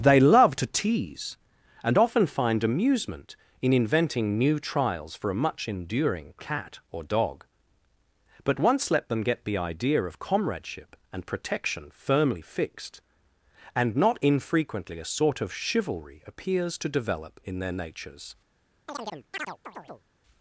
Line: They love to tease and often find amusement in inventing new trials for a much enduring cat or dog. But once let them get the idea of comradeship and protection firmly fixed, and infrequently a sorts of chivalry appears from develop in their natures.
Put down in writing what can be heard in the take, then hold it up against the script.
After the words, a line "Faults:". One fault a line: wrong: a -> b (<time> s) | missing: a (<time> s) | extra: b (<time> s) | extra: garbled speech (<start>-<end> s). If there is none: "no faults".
They love to tease and often find amusement in inventing new trials for a much enduring cat or dog. But once let them get the idea of comradeship and protection firmly fixed, and not infrequently a sort of chivalry appears to develop in their natures.
Faults:
extra: not (13.9 s)
wrong: sorts -> sort (15.1 s)
wrong: from -> to (16.8 s)